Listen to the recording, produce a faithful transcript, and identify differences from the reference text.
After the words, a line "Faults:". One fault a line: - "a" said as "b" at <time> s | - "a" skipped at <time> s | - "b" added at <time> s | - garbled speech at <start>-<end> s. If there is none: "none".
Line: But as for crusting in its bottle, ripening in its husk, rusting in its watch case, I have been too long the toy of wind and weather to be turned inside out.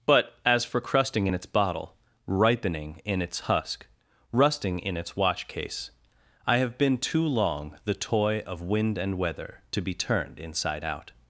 But as for crusting in its bottle, ripening in its husk, rusting in its watch case, I have been too long the toy of wind and weather to be turned inside out.
Faults:
none